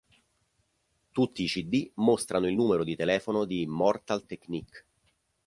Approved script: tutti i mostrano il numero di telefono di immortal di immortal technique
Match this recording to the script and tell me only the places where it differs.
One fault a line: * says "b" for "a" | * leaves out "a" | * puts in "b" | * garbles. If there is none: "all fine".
* puts in "cd"
* leaves out "di immortal"